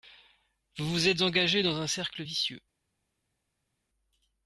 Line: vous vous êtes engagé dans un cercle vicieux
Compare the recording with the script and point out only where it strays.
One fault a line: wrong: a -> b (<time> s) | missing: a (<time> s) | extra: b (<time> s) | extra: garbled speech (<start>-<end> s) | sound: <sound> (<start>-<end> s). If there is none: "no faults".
no faults